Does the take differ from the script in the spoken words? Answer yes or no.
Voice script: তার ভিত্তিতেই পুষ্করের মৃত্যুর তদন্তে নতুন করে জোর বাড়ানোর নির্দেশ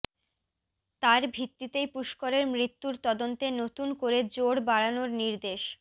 no